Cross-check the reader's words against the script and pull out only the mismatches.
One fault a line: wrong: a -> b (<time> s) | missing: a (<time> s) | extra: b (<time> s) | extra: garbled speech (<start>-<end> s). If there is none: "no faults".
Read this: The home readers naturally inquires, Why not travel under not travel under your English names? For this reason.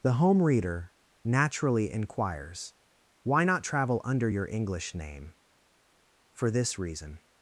wrong: readers -> reader (0.4 s)
missing: not travel under (4.3 s)
wrong: names -> name (4.9 s)